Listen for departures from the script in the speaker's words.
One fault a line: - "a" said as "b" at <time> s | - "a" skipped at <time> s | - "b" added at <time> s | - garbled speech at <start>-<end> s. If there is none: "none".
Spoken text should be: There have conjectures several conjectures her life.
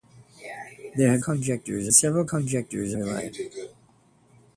none